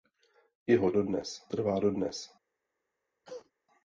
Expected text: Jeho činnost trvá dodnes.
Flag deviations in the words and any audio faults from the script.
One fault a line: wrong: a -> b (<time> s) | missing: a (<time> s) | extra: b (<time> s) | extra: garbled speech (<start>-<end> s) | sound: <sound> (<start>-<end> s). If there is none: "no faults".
wrong: činnost -> dodnes (0.9 s)
sound: cough (3.2-3.5 s)